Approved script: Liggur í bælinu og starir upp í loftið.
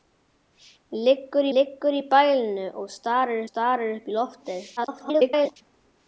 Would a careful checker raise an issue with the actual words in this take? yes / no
yes